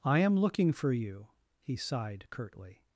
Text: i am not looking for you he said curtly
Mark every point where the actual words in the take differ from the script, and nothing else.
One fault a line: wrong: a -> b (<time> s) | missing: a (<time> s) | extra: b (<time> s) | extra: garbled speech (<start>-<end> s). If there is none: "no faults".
missing: not (0.3 s)
wrong: said -> sighed (1.8 s)